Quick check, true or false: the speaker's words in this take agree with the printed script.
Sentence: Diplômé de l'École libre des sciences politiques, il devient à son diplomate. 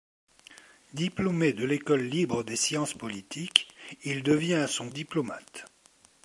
true